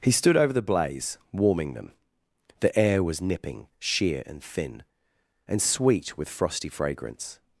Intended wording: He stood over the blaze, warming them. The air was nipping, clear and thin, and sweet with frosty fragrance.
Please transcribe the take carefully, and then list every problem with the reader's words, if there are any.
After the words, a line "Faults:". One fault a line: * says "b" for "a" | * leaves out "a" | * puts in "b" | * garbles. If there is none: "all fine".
He stood over the blaze, warming them. The air was nipping, sheer and thin, and sweet with frosty fragrance.
Faults:
* says "sheer" for "clear"